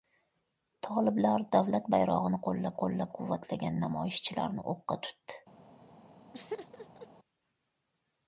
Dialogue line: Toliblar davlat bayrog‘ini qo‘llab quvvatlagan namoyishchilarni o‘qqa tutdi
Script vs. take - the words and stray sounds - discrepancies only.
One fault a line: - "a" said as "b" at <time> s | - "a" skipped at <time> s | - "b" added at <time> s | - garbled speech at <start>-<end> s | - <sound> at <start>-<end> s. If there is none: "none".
- "qo‘llab" added at 2.8 s
- laugh at 6.3-7.1 s